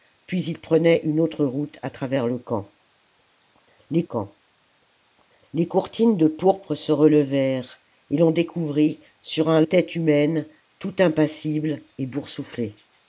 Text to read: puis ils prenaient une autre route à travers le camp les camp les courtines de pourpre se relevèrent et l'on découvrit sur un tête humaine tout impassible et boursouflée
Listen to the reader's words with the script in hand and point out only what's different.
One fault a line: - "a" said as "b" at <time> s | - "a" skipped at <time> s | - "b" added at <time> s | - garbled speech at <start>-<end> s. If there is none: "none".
none